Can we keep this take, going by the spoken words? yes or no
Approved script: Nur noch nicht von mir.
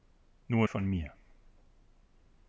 no